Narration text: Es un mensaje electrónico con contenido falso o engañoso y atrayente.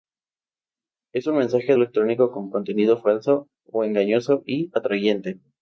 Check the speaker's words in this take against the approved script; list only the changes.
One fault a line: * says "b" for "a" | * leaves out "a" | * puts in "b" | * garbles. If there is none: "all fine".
all fine